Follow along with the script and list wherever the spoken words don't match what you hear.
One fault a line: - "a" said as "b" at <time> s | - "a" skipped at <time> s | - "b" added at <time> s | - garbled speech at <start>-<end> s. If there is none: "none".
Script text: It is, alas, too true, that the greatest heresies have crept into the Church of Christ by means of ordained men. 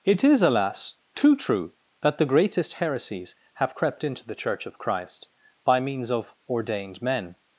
none